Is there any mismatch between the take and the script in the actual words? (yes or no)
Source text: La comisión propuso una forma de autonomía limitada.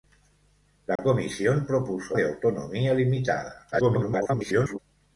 yes